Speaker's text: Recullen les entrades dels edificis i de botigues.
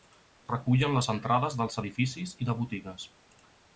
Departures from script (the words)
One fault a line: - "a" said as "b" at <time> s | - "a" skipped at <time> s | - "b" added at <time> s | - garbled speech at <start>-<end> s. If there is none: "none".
none